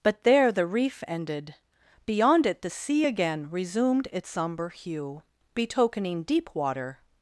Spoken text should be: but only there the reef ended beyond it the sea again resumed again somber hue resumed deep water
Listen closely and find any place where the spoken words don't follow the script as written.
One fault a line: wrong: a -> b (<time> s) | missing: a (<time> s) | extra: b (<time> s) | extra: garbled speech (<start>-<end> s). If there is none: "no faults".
missing: only (0.2 s)
wrong: again -> its (4.1 s)
wrong: resumed -> betokening (5.6 s)